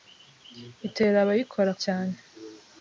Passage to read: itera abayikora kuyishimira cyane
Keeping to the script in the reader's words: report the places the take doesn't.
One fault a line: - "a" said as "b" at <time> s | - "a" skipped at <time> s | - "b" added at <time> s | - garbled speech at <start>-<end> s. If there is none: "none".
- "kuyishimira" skipped at 1.7 s